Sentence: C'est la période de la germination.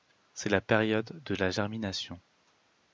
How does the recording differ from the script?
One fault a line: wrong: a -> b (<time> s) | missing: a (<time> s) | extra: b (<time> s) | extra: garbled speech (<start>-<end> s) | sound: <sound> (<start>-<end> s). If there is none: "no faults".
no faults